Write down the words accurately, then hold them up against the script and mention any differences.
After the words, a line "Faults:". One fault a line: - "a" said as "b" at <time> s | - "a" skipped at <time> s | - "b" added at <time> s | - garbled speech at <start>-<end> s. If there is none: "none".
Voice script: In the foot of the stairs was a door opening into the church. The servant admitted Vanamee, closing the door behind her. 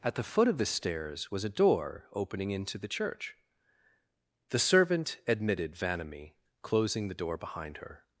At the foot of the stairs was a door opening into the church. The servant admitted Vanamee, closing the door behind her.
Faults:
- "In" said as "At" at 0.0 s